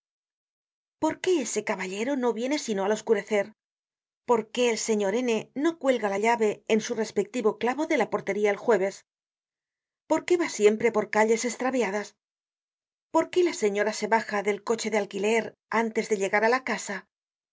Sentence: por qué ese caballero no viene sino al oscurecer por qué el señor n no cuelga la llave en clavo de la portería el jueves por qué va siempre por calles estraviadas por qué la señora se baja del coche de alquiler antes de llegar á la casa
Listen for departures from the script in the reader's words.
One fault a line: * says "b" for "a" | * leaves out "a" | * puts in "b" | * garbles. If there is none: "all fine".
* puts in "su respectivo"